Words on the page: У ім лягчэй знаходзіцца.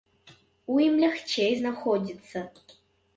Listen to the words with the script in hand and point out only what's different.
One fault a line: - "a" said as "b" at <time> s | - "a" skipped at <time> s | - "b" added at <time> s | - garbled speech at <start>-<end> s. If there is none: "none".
none